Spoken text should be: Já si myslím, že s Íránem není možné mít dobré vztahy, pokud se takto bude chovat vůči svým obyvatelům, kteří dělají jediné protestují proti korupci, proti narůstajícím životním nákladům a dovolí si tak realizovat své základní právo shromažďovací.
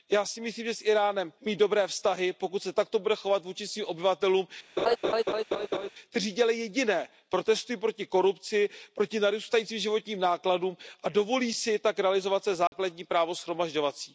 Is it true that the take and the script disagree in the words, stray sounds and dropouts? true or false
true